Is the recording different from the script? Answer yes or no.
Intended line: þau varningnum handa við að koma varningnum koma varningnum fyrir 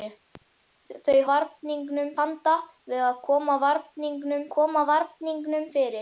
no